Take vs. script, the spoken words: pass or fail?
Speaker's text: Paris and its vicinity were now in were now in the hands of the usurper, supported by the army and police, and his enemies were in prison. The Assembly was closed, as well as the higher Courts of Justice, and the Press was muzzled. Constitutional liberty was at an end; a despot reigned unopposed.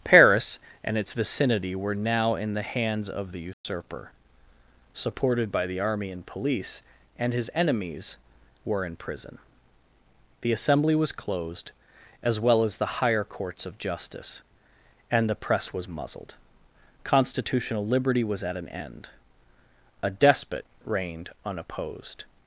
fail